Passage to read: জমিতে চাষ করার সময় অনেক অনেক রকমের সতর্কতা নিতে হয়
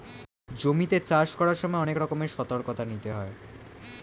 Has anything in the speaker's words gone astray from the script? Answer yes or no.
yes